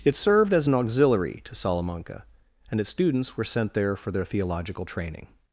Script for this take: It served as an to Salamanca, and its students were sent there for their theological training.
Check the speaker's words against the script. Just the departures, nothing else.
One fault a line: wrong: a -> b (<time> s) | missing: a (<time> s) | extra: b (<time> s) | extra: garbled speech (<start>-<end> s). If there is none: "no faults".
extra: auxiliary (0.7 s)